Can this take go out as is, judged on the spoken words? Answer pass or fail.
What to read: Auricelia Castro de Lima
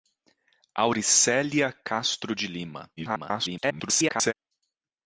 fail